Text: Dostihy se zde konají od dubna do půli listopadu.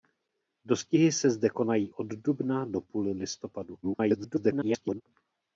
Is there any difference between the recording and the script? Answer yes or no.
yes